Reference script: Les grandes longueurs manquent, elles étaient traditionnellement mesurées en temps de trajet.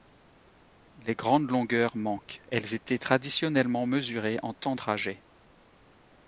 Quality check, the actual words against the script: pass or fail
fail